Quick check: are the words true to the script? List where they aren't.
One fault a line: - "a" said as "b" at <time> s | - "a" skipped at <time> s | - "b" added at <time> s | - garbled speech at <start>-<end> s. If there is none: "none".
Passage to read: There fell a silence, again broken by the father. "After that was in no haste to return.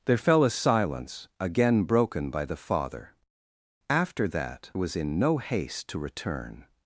none